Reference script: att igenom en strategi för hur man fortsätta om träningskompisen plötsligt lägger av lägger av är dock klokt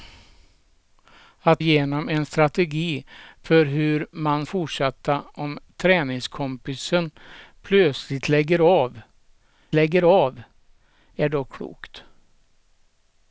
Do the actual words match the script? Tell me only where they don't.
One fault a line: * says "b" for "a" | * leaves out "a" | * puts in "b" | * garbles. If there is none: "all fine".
all fine